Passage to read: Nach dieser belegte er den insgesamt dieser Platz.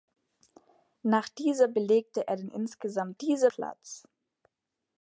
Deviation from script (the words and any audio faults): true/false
false